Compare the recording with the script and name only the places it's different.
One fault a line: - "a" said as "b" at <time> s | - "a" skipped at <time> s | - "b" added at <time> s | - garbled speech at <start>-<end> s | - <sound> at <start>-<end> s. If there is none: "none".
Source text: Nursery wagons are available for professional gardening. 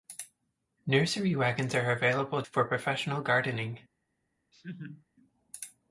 - laugh at 4.5-5.1 s